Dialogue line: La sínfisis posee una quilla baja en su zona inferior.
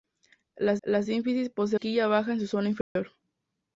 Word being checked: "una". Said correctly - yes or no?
no